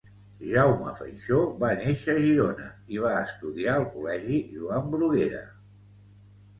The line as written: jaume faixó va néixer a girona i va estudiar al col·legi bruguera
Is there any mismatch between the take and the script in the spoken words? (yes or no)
yes